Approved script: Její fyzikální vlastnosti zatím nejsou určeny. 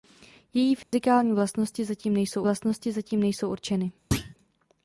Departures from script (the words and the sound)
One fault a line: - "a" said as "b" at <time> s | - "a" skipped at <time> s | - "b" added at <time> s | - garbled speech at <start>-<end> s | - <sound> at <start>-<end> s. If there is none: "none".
- dropout at 0.8-0.9 s
- "vlastnosti zatím nejsou" added at 2.4 s
- thud at 4.1-4.3 s